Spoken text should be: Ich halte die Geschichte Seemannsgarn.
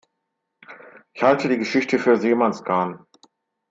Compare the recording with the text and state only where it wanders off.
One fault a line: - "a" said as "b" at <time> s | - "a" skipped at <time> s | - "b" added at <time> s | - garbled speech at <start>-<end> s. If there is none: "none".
- "für" added at 2.0 s